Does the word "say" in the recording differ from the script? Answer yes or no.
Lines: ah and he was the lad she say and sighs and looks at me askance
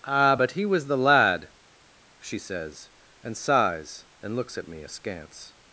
yes